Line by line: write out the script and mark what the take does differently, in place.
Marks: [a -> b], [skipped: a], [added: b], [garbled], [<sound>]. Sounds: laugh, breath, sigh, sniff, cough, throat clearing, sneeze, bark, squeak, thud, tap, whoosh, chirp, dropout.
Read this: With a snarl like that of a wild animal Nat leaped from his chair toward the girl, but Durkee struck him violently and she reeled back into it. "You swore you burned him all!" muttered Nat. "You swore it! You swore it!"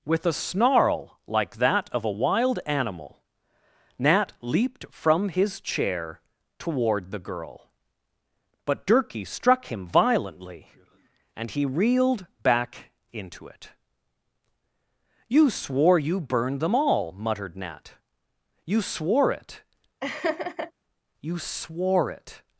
With a snarl like that of a wild animal Nat leaped from his chair toward the girl, but Durkee struck him violently and [she -> he] reeled back into it. "You swore you burned [him -> them] all!" muttered Nat. "You swore it! [laugh] You swore it!"